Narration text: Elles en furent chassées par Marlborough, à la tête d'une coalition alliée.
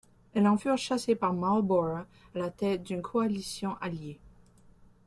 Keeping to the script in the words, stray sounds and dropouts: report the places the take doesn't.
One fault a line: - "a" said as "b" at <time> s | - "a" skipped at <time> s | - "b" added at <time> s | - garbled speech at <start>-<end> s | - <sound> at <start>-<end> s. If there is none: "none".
none